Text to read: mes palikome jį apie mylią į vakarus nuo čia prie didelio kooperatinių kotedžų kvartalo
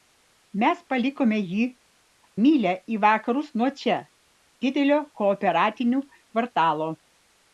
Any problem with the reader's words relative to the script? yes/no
yes